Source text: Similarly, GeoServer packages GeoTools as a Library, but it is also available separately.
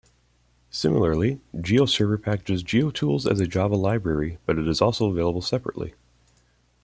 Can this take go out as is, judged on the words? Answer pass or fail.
fail